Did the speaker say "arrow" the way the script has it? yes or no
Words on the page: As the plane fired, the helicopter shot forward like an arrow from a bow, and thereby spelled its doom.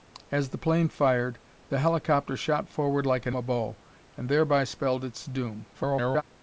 no